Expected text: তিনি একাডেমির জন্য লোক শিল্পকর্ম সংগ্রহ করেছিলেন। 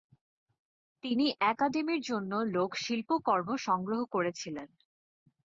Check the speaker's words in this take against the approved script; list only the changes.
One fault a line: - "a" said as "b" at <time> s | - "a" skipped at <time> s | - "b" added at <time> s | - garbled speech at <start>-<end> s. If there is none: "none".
none